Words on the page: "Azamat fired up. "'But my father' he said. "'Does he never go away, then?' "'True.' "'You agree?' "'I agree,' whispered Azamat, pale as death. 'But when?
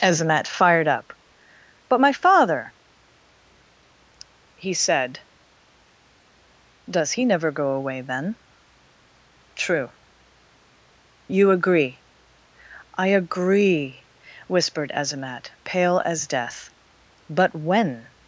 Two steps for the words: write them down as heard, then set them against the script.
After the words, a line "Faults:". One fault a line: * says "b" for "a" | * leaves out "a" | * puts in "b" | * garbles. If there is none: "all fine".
"Azamat fired up. "'But my father' he said. "'Does he never go away, then?' "'True.' "'You agree?' "'I agree,' whispered Azamat, pale as death. 'But when?
Faults:
all fine